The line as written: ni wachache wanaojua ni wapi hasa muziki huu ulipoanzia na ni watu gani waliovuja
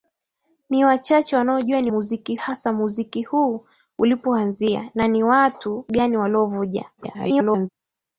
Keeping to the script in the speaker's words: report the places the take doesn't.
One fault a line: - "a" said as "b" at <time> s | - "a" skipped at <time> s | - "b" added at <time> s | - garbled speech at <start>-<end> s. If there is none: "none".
- "wapi" said as "muziki" at 1.9 s
- garbled speech at 7.0-7.7 s